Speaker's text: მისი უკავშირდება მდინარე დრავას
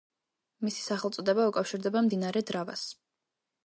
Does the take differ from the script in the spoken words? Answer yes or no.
yes